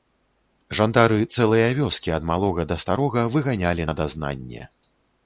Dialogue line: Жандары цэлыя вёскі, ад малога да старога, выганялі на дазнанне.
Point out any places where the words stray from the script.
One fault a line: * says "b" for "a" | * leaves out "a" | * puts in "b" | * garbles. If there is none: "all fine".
all fine